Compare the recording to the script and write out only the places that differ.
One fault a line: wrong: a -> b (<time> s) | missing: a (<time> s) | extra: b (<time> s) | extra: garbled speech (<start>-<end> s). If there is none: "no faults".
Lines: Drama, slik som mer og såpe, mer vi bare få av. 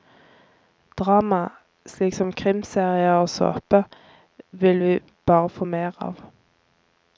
wrong: mer -> krimserier (2.3 s)
wrong: mer -> vil (4.5 s)
extra: mer (5.6 s)